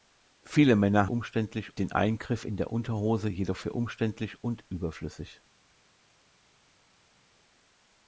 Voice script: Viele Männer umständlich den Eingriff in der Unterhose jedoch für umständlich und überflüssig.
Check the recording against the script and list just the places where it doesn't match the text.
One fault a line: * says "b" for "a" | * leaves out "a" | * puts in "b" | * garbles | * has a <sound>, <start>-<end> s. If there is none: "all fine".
all fine